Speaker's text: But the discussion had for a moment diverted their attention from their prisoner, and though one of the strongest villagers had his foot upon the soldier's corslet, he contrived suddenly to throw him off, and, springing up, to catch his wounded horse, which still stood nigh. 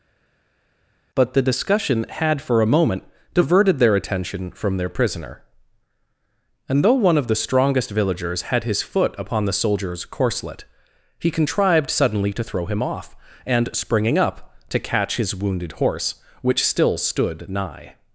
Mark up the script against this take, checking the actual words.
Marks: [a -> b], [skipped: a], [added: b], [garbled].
But the discussion had for a moment diverted their attention from their prisoner, and though one of the strongest villagers had his foot upon the soldier's corslet, he contrived suddenly to throw him off, and, springing up, to catch his wounded horse, which still stood nigh.